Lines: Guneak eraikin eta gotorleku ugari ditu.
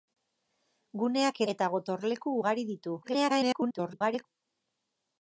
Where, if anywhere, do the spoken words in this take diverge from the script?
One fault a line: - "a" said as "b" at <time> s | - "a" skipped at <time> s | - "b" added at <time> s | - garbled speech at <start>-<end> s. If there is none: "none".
- "eraikin" skipped at 1.4 s
- garbled speech at 3.0-4.3 s